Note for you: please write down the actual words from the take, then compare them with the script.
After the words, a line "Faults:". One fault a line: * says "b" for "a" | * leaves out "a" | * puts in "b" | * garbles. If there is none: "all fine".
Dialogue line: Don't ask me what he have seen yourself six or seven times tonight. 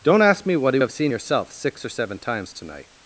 Don't ask me what he have seen yourself six or seven times tonight.
Faults:
all fine